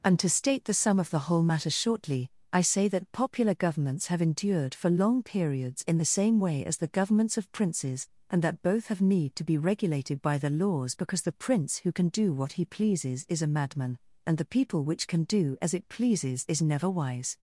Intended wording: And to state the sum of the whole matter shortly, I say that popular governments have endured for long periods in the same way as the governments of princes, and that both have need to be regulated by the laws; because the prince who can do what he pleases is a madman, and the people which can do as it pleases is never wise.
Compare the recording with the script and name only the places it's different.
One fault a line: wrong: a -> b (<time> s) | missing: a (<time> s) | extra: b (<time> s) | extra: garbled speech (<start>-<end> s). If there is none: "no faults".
no faults